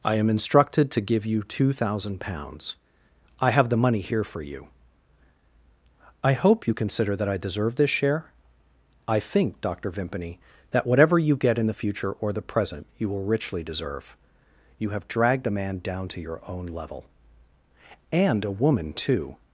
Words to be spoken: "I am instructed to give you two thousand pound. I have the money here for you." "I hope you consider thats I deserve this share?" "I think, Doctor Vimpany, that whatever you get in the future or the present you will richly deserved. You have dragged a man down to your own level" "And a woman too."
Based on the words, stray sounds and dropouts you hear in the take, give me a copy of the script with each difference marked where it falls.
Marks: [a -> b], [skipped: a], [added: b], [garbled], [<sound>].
"I am instructed to give you two thousand [pound. -> pounds] I have the money here for you." "I hope you consider [thats -> that] I deserve this share?" "I think, Doctor Vimpany, that whatever you get in the future or the present you will richly [deserved. -> deserve] You have dragged a man down to your own level" "And a woman too."